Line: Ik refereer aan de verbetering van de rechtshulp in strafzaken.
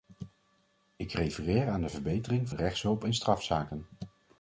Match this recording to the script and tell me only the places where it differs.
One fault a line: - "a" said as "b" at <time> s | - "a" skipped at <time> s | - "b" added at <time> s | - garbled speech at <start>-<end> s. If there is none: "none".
- "van" skipped at 2.5 s